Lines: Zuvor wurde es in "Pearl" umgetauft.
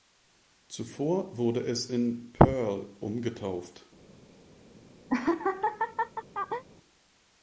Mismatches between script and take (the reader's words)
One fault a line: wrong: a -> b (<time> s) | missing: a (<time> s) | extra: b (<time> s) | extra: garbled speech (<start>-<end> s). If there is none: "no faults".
no faults